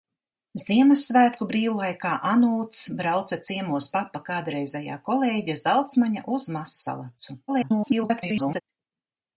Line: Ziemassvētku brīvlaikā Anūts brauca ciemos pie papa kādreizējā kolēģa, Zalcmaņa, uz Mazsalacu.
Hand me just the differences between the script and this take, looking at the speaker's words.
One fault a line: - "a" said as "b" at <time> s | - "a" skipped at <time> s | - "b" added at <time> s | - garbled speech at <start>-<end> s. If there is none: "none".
- "pie" skipped at 3.9 s
- garbled speech at 7.5-8.6 s